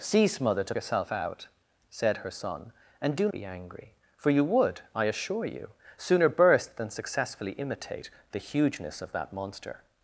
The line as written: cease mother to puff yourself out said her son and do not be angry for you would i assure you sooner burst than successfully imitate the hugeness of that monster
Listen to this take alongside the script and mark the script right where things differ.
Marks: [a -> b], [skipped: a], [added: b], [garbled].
cease mother to [skipped: puff] yourself out said her son and do [skipped: not] be angry for you would i assure you sooner burst than successfully imitate the hugeness of that monster